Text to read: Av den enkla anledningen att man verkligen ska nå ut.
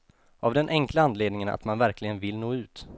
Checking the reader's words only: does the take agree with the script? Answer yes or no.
no